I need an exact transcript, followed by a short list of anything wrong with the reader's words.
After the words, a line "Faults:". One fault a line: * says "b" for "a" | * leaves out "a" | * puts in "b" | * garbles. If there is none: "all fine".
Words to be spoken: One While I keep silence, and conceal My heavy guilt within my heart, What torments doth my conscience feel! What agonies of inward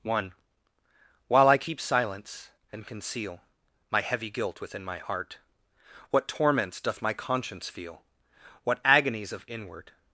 One While I keep silence, and conceal My heavy guilt within my heart, What torments doth my conscience feel! What agonies of inward
Faults:
all fine